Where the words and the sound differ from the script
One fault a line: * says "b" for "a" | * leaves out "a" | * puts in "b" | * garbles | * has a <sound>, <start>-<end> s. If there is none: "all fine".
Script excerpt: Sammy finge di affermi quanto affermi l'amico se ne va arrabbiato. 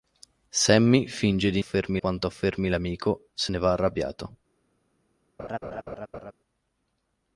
* has a laugh, 5.4-6.3 s